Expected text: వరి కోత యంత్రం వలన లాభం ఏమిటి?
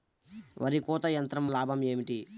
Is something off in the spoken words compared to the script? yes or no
yes